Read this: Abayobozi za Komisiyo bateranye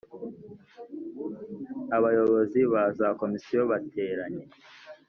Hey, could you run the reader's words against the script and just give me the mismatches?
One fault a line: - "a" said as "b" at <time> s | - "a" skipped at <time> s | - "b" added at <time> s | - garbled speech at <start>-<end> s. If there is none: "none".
- "ba" added at 2.7 s